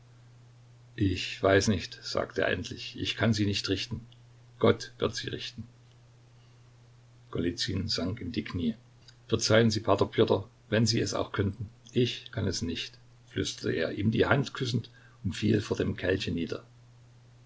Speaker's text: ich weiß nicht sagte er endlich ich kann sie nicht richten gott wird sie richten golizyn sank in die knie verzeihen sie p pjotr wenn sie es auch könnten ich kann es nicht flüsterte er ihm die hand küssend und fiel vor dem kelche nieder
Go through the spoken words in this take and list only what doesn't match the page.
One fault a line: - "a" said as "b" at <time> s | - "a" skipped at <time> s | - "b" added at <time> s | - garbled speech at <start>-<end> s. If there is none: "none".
none